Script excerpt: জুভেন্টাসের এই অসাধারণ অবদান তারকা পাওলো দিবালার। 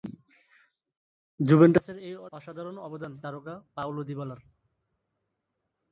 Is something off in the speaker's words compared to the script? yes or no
no